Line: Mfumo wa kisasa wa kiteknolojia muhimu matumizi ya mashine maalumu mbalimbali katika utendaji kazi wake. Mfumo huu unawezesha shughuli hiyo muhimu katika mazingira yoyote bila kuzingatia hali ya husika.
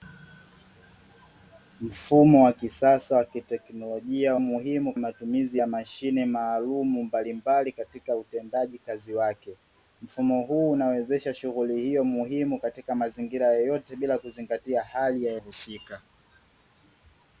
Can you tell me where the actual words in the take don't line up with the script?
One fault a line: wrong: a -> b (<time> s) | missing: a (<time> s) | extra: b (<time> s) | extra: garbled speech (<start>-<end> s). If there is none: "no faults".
no faults